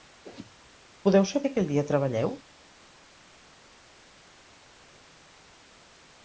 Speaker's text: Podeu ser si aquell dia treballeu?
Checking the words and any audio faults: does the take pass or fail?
pass